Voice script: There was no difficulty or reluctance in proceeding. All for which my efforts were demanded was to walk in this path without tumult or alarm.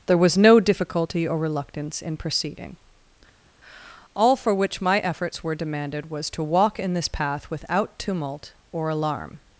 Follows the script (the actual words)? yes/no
yes